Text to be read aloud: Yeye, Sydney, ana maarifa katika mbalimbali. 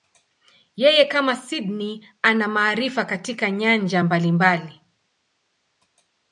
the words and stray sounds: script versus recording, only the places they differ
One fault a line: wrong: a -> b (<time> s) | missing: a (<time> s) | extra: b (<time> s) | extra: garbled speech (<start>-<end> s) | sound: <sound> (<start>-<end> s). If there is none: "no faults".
extra: kama (1.1 s)
extra: nyanja (3.5 s)